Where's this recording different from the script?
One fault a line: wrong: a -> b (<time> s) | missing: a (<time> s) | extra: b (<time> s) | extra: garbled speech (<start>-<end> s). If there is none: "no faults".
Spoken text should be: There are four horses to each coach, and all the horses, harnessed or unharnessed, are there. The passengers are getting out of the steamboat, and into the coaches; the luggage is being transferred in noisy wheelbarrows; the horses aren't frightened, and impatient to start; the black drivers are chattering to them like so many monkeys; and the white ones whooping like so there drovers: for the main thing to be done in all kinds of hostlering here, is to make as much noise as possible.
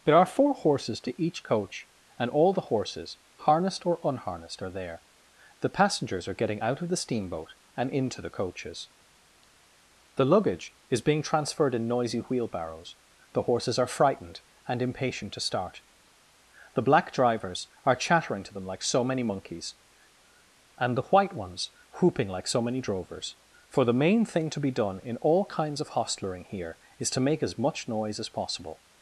wrong: aren't -> are (13.8 s)
wrong: there -> many (22.6 s)